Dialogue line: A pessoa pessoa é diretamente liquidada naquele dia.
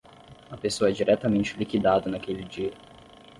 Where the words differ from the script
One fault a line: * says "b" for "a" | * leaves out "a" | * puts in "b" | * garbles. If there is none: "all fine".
* leaves out "pessoa"